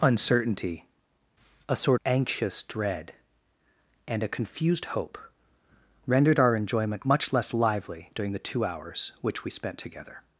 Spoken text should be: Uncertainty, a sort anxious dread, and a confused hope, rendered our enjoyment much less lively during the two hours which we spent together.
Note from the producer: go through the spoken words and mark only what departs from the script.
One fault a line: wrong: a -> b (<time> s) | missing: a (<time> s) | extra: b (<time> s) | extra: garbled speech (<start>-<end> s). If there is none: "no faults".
no faults